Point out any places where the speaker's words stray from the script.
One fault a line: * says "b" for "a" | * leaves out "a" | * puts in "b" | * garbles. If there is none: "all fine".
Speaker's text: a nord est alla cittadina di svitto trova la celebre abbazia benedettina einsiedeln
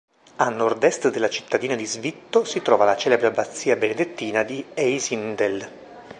* says "della" for "alla"
* puts in "si"
* puts in "di"